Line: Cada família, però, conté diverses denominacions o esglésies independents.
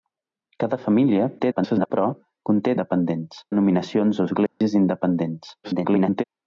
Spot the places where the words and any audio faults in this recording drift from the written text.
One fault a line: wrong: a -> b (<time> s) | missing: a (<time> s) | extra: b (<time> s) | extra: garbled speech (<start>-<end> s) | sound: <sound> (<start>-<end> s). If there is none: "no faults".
extra: garbled speech (1.4-1.9 s)
wrong: diverses -> independents (2.7 s)
sound: dropout (4.5-4.6 s)
extra: garbled speech (5.6-6.2 s)